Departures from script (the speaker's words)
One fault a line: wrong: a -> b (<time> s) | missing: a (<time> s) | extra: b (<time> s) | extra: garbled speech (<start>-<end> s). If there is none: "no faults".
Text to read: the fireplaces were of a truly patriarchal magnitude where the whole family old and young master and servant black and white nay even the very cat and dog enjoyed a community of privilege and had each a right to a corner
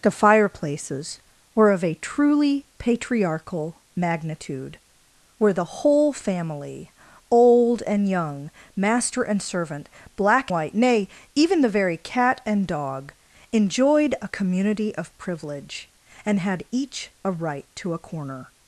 missing: and (10.5 s)